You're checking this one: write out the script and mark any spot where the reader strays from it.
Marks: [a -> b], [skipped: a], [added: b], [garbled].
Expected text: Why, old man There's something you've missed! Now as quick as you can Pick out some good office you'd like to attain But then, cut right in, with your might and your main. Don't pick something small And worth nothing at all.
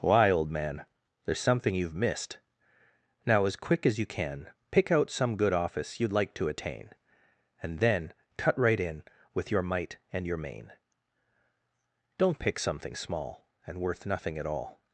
Why, old man There's something you've missed! Now as quick as you can Pick out some good office you'd like to attain [But -> And] then, cut right in, with your might and your main. Don't pick something small And worth nothing at all.